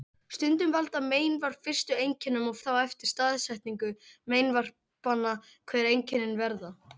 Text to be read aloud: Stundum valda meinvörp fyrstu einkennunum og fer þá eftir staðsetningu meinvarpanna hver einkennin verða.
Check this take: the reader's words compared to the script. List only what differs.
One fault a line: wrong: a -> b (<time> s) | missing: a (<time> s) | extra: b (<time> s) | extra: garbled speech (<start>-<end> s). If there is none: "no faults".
missing: fer (2.6 s)